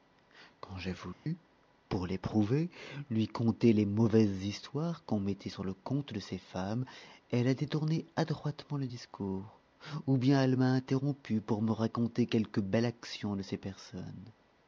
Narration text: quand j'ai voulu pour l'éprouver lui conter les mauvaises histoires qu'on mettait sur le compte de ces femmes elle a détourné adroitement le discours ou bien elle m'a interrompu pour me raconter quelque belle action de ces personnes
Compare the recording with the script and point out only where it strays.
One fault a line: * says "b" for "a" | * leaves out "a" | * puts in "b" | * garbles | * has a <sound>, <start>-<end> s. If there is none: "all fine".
* has a dropout, 1.1-1.3 s